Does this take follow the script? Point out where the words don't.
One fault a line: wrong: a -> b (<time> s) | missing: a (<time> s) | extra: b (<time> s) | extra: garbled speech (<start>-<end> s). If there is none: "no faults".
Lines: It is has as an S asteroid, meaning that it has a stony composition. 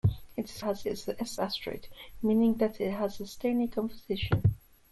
no faults